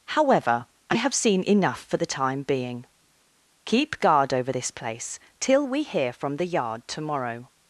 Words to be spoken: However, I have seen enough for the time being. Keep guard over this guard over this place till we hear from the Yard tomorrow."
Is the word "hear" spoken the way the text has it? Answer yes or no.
yes